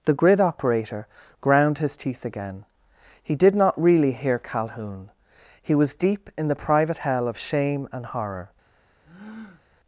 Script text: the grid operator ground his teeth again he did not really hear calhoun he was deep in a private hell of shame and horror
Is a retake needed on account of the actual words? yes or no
yes